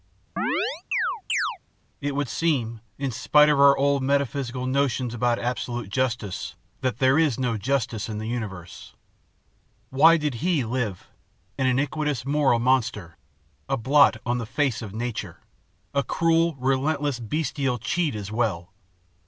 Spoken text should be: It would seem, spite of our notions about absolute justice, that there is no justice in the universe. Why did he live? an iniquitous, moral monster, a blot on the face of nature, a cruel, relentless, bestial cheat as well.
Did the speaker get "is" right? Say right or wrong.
right